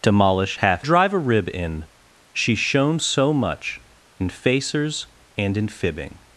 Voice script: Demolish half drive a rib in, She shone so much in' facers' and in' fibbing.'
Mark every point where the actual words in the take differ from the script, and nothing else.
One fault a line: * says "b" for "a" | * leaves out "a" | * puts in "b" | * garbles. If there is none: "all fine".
all fine